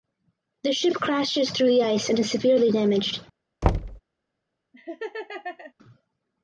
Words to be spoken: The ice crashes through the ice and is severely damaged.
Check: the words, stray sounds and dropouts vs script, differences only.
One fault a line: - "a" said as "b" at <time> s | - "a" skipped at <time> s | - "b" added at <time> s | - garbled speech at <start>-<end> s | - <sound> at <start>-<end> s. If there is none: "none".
- "ice" said as "ship" at 0.7 s
- thud at 3.6-4.0 s
- laugh at 4.7-5.7 s